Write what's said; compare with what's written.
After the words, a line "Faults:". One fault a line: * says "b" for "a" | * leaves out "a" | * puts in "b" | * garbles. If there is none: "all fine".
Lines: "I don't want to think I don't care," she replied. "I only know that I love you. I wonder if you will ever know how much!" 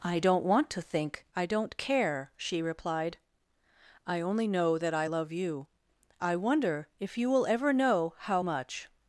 "I don't want to think I don't care," she replied. "I only know that I love you. I wonder if you will ever know how much!"
Faults:
all fine